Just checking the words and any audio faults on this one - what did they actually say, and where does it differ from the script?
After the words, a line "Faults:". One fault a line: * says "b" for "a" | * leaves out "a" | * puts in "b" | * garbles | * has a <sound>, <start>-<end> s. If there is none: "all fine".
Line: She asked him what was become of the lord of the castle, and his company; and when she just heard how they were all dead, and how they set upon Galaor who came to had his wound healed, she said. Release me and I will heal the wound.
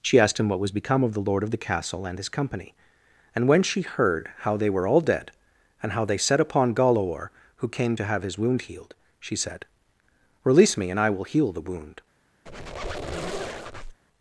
She asked him what was become of the lord of the castle, and his company; and when she heard how they were all dead, and how they set upon Galaor who came to have his wound healed, she said. Release me and I will heal the wound.
Faults:
* leaves out "just"
* says "have" for "had"
* has a squeak, 12.5-14.0 s